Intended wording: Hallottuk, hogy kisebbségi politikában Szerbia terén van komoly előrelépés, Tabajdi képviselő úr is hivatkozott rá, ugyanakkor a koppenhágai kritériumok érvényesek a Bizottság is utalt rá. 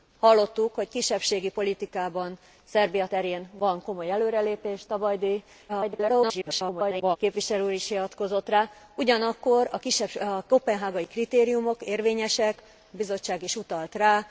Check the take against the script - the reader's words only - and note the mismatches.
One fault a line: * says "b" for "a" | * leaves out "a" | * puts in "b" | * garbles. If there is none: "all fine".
* garbles